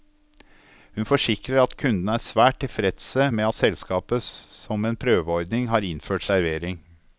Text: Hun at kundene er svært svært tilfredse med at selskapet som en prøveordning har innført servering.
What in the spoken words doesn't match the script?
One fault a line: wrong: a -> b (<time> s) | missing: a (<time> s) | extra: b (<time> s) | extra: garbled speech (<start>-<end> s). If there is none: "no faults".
extra: forsikrer (1.1 s)
missing: svært (2.6 s)